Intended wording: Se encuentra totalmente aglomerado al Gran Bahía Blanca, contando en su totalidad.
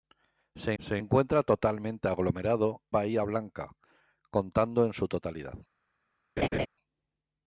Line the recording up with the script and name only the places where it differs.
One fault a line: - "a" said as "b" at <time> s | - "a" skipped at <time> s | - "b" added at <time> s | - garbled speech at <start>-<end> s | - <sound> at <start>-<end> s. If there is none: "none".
- "se" added at 0.8 s
- "al Gran" skipped at 2.8 s
- laugh at 6.4-6.7 s